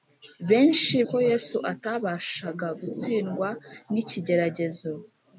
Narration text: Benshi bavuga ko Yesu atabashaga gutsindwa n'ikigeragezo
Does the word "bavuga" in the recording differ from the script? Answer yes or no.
yes